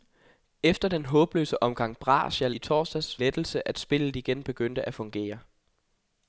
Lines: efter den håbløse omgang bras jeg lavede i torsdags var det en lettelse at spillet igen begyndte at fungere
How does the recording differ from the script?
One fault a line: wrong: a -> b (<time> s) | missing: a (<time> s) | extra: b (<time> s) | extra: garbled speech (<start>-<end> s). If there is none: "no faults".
missing: lavede (2.5 s)
missing: var det en (3.2 s)